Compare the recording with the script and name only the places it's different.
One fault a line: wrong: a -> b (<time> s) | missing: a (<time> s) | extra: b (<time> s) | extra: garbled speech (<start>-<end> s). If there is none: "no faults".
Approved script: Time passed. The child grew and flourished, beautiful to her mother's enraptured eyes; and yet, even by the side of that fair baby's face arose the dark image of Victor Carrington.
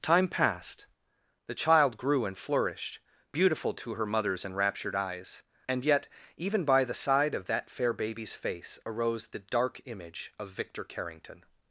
no faults